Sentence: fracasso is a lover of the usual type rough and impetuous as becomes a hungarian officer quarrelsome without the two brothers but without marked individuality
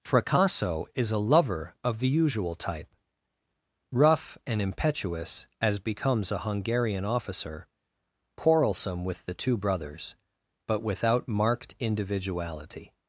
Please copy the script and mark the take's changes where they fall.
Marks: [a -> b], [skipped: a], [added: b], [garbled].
fracasso is a lover of the usual type rough and impetuous as becomes a hungarian officer quarrelsome [without -> with] the two brothers but without marked individuality